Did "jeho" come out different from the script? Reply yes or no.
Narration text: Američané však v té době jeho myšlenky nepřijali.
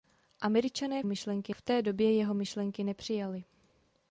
no